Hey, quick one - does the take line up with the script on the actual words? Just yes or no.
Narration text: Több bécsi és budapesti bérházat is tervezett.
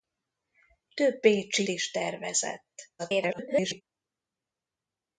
no